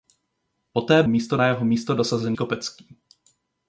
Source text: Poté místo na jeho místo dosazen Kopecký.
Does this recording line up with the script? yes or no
yes